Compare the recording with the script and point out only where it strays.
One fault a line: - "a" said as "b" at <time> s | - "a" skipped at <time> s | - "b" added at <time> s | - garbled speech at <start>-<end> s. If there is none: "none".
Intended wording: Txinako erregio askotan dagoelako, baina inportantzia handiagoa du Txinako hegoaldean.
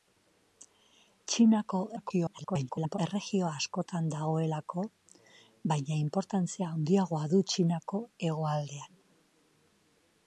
- garbled speech at 2.0-3.0 s